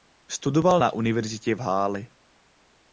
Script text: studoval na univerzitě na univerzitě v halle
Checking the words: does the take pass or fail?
fail